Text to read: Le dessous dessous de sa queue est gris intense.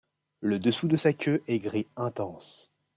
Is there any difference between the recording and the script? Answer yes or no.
yes